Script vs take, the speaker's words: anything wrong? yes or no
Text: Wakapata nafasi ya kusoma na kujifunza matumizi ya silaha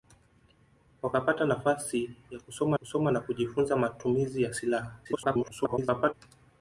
yes